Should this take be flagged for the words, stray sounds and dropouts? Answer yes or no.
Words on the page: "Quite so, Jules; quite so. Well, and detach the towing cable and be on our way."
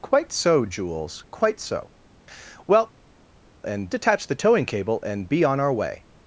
no